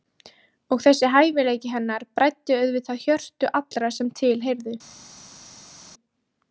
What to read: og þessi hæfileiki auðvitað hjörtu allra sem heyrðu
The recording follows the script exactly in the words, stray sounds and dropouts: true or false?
false